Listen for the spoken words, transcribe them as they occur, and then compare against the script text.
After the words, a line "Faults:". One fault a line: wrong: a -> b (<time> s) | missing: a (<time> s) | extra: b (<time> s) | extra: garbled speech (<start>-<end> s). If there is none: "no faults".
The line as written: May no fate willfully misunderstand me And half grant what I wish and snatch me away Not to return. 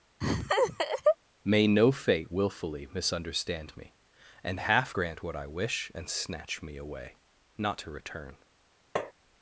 May no fate willfully misunderstand me And half grant what I wish and snatch me away Not to return.
Faults:
no faults